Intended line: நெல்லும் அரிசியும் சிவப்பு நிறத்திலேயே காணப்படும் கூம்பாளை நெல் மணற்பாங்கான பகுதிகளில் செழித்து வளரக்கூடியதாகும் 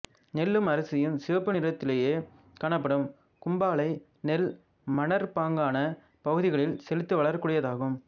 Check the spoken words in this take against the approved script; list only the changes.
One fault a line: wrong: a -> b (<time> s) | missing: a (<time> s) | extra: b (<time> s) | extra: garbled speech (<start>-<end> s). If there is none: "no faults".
no faults